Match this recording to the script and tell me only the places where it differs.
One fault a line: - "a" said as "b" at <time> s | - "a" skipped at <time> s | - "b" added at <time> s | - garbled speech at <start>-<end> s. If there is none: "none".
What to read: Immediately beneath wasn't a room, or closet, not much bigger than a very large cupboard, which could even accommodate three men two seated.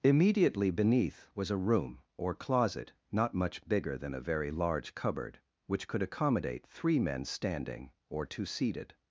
- "wasn't" said as "was" at 1.4 s
- "even" skipped at 6.0 s
- "standing or" added at 7.2 s